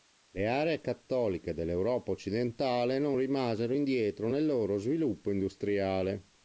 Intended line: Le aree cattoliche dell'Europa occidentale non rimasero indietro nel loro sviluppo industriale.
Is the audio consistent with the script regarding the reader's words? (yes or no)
yes